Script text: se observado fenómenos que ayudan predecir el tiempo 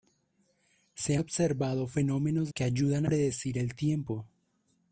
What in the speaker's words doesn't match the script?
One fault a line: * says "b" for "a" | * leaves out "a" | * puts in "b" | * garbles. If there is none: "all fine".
all fine